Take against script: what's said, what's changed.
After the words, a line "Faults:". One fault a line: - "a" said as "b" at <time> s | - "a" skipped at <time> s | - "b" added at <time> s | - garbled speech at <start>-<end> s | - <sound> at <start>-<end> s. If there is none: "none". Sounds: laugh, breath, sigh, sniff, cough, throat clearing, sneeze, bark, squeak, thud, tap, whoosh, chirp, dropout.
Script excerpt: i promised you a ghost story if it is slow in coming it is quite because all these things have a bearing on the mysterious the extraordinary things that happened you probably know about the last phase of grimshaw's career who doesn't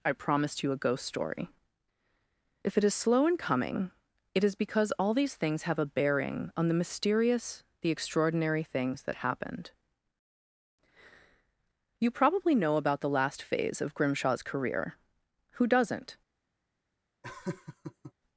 i promised you a ghost story if it is slow in coming it is because all these things have a bearing on the mysterious the extraordinary things that happened you probably know about the last phase of grimshaw's career who doesn't
Faults:
- "quite" skipped at 4.5 s
- laugh at 17.2-18.1 s